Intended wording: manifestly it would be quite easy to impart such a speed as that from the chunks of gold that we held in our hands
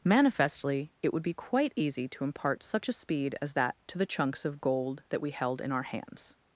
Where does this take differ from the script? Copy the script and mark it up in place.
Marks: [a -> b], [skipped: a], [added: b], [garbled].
manifestly it would be quite easy to impart such a speed as that [from -> to] the chunks of gold that we held in our hands